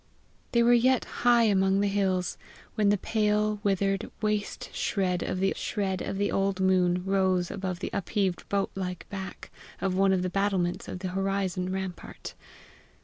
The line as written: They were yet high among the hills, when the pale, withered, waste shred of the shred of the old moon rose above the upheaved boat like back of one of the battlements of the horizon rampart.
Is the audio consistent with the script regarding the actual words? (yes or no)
yes